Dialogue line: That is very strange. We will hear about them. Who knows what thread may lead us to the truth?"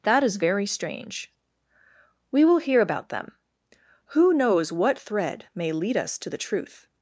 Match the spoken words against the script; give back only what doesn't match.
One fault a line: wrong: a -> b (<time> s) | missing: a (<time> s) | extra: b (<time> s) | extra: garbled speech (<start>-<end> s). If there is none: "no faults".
no faults